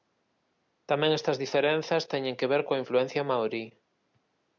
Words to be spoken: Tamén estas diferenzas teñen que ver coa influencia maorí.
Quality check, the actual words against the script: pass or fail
pass